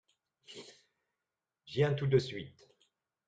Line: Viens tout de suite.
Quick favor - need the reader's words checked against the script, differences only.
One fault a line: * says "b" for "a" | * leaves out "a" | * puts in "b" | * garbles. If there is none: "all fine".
all fine